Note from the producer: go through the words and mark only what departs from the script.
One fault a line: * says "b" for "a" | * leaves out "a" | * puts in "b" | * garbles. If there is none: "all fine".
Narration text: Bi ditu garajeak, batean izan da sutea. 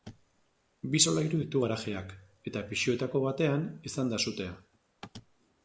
* puts in "solairu"
* puts in "eta pisuetako"